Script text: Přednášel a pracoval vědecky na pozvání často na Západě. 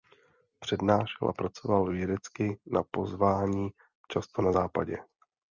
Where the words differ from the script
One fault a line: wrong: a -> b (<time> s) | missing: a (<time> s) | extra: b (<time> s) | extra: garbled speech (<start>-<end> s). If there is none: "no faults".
no faults